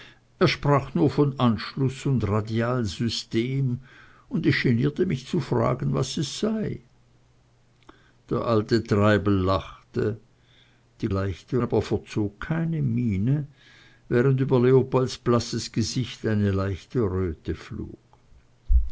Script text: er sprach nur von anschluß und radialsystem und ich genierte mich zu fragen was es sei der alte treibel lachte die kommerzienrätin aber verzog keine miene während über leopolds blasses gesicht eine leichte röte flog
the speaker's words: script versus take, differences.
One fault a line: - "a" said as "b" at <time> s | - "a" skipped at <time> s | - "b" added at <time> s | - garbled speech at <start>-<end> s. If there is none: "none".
- "kommerzienrätin" said as "leichte" at 11.1 s